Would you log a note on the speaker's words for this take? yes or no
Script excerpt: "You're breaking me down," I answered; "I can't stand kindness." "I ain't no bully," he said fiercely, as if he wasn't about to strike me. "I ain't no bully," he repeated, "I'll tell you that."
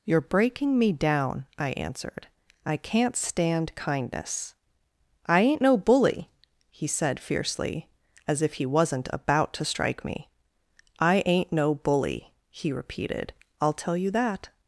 no